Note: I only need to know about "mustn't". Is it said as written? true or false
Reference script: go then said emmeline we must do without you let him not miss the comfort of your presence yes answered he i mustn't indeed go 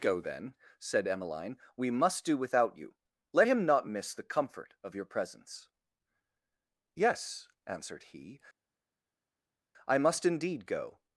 false